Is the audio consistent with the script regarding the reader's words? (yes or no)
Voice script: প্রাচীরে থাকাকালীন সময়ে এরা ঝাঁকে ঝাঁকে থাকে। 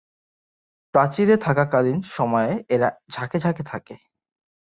yes